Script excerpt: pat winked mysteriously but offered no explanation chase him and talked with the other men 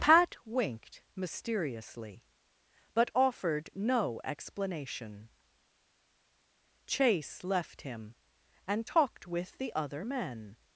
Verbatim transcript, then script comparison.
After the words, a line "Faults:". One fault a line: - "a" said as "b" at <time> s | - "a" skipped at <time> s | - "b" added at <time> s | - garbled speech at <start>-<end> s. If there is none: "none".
pat winked mysteriously but offered no explanation chase left him and talked with the other men
Faults:
- "left" added at 7.4 s